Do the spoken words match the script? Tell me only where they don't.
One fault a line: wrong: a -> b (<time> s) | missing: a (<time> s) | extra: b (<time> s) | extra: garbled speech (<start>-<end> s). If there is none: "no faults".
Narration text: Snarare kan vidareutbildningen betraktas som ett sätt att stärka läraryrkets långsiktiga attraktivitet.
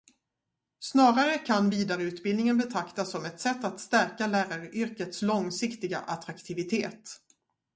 no faults